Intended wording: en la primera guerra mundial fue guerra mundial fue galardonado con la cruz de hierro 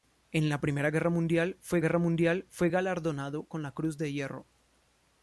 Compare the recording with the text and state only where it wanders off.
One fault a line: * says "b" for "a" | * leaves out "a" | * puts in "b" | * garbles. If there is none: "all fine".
all fine